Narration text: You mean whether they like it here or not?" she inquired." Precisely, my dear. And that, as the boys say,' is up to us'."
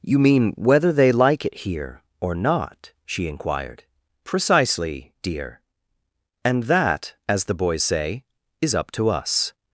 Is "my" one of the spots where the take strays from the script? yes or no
yes